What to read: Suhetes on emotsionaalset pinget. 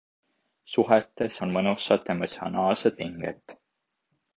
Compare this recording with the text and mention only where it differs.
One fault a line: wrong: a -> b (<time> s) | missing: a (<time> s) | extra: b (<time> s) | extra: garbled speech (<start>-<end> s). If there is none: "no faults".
extra: mõnusat (1.6 s)